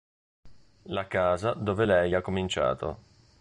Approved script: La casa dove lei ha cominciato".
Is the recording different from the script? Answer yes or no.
no